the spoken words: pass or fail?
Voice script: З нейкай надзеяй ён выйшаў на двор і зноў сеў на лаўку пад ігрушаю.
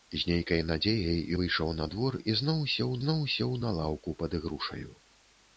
fail